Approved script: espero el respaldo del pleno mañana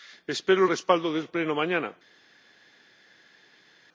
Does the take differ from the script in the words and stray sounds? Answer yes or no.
no